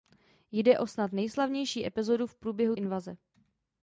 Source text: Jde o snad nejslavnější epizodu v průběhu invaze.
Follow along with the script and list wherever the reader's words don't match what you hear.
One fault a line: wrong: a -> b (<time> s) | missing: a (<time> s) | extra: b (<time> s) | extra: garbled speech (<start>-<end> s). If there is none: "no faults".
no faults